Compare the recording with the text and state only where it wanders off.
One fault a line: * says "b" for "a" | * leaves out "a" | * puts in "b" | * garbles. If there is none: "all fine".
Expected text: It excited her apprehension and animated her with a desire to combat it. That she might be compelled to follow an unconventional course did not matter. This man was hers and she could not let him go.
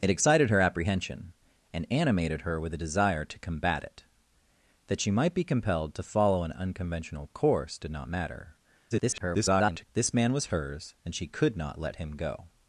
* garbles